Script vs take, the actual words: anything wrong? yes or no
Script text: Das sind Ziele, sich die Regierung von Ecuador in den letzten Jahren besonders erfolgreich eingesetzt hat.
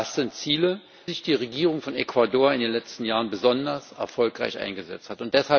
no